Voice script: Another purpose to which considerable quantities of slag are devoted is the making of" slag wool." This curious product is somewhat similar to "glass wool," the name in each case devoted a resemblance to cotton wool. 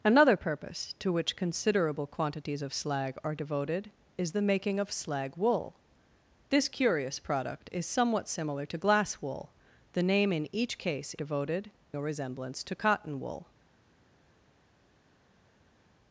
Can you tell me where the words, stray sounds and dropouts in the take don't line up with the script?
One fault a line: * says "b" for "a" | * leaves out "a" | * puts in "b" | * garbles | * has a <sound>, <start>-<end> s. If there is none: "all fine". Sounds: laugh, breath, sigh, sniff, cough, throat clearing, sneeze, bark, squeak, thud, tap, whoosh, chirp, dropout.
all fine